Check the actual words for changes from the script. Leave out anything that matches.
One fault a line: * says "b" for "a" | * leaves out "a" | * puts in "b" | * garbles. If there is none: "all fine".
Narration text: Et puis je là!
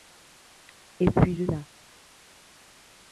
all fine